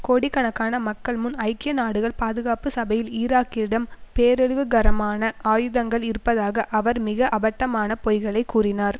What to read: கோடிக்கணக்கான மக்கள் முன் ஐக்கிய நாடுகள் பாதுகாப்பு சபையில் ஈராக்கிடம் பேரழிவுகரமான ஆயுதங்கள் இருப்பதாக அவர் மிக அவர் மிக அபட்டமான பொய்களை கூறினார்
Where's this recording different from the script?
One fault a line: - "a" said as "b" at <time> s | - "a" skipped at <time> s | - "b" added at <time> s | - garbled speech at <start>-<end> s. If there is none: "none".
- "அவர் மிக" skipped at 7.3 s